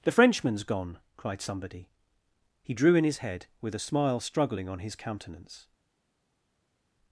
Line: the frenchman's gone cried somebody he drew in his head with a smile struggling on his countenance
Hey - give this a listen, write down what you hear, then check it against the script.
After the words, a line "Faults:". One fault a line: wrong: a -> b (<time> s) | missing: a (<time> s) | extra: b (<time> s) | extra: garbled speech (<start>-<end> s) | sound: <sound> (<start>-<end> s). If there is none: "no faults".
the frenchman's gone cried somebody he drew in his head with a smile struggling on his countenance
Faults:
no faults